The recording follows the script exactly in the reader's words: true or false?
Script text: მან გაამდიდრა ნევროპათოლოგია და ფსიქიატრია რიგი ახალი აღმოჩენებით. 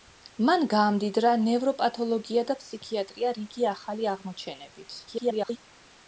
false